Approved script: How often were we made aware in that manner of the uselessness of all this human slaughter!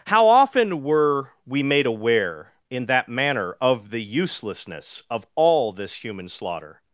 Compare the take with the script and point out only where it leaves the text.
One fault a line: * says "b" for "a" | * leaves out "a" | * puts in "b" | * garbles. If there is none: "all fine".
all fine